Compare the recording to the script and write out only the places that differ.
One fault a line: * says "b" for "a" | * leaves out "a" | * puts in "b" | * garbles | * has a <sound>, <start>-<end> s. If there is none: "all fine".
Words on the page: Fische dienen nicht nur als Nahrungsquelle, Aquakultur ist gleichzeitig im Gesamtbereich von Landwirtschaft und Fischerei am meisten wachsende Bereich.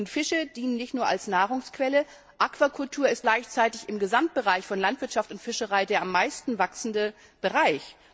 * puts in "der"